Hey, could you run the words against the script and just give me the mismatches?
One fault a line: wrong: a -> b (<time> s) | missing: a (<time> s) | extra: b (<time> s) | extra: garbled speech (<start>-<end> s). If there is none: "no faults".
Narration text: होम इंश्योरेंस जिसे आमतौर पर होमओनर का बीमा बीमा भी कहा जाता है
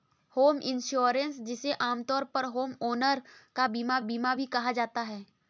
no faults